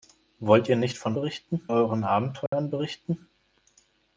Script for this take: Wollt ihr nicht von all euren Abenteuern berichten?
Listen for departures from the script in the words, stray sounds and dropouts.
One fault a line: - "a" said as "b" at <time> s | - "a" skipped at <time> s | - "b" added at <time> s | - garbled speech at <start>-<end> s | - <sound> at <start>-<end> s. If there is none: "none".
- "all" said as "berichten" at 1.1 s
- dropout at 2.5-2.5 s